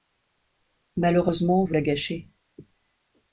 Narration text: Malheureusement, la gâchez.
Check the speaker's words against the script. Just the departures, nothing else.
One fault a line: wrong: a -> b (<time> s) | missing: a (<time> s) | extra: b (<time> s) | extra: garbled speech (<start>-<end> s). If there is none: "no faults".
extra: vous (1.6 s)